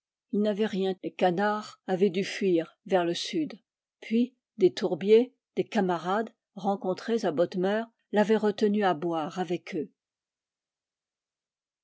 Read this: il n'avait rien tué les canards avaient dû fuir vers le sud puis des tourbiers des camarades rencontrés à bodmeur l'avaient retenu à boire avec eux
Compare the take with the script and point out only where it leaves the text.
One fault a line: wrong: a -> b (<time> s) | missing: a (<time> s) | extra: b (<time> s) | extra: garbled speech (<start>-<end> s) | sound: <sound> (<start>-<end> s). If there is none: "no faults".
missing: tué (0.9 s)